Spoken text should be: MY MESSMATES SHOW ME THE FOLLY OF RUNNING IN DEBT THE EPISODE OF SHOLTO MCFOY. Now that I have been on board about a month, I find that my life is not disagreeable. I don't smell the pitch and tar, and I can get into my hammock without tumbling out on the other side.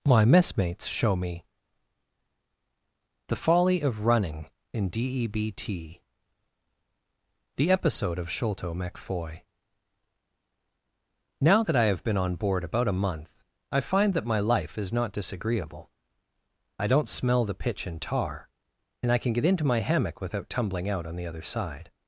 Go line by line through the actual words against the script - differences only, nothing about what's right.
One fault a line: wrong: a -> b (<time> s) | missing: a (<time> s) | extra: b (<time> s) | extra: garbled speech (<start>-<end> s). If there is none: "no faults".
no faults